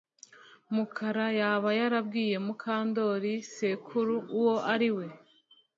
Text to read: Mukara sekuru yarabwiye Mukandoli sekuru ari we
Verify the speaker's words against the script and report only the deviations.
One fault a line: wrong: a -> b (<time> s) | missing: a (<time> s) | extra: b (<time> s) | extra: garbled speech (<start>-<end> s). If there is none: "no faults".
wrong: sekuru -> yaba (1.4 s)
extra: uwo (4.4 s)